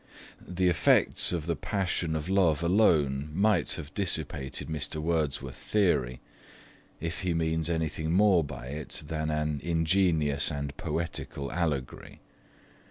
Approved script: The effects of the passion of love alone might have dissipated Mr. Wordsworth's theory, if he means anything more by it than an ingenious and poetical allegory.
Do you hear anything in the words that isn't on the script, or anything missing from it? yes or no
no